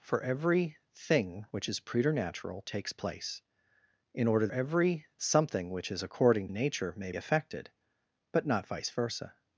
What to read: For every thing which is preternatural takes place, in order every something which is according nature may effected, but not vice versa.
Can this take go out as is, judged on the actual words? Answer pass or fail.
pass